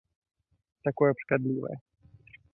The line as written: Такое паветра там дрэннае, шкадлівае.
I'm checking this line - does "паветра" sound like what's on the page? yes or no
no